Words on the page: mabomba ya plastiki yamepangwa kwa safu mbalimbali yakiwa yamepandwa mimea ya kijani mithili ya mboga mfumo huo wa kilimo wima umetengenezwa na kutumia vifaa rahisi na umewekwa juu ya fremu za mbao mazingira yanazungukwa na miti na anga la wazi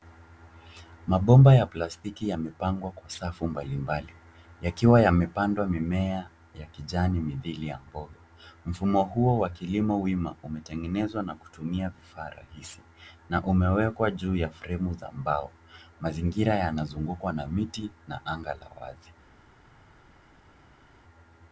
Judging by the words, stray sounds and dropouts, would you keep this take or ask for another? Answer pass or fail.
pass